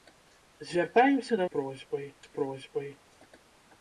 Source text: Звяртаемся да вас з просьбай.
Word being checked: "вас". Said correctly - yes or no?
no